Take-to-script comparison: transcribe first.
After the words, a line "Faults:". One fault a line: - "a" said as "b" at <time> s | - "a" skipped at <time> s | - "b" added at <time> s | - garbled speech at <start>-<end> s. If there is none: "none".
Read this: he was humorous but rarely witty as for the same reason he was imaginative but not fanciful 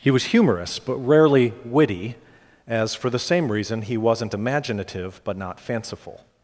he was humorous but rarely witty as for the same reason he wasn't imaginative but not fanciful
Faults:
- "was" said as "wasn't" at 4.0 s